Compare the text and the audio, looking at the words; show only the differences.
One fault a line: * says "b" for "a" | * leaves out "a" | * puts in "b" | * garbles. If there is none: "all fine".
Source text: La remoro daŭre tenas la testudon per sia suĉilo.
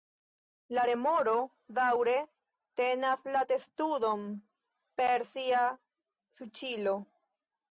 all fine